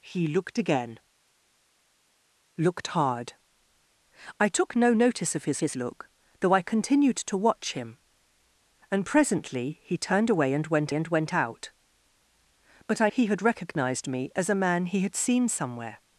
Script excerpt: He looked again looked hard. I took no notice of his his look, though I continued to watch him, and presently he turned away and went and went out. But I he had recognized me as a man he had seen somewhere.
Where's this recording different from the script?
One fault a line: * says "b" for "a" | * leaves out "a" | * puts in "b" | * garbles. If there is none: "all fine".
all fine